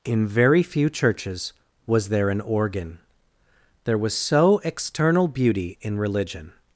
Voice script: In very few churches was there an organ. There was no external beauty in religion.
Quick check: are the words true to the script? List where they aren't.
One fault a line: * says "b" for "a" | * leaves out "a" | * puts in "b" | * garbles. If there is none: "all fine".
* says "so" for "no"